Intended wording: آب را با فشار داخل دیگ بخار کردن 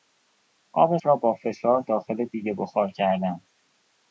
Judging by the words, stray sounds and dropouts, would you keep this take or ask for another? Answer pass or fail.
pass